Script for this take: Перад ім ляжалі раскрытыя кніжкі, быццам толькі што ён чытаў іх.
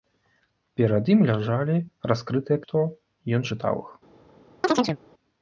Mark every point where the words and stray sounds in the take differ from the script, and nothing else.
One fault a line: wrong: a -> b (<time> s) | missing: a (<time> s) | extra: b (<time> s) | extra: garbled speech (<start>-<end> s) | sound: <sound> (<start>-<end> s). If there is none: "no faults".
missing: кніжкі быццам толькі (2.6 s)
sound: chirp (4.6-5.0 s)